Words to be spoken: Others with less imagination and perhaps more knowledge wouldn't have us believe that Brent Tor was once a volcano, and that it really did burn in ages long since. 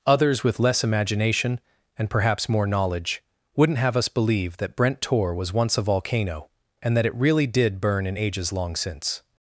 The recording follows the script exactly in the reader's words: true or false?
true